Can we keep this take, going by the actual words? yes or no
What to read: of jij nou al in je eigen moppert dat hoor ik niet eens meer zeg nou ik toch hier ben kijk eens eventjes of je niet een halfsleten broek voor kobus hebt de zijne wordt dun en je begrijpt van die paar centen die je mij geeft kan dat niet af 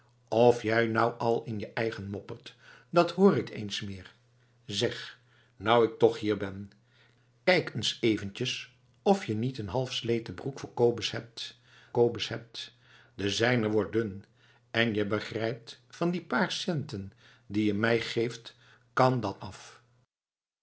no